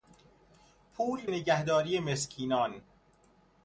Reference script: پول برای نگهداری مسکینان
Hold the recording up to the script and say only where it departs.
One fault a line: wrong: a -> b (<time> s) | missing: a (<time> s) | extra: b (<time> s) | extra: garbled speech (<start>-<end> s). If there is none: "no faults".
missing: برای (1.3 s)